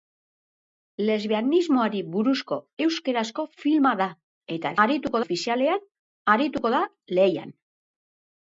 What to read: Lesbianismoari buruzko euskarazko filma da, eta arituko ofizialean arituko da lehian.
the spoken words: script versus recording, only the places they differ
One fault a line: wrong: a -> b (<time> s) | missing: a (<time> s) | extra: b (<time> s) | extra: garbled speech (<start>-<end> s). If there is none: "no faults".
no faults